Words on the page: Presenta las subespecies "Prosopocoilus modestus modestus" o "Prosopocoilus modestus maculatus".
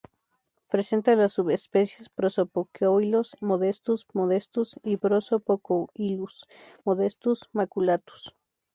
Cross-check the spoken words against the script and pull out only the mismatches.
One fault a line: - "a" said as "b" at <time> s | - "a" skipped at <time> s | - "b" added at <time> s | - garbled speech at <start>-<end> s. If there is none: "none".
- "o" said as "y" at 4.8 s